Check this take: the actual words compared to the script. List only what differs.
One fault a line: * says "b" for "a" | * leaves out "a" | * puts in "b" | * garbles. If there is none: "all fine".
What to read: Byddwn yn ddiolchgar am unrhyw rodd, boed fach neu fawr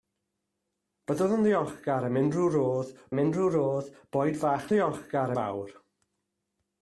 * puts in "am unrhyw rodd"
* says "ddiolchgar" for "neu"